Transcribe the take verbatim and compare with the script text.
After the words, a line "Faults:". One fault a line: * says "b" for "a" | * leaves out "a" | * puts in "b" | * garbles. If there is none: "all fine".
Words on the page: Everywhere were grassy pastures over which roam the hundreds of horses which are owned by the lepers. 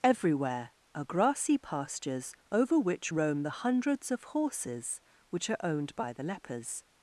Everywhere are grassy pastures over which roam the hundreds of horses which are owned by the lepers.
Faults:
* says "are" for "were"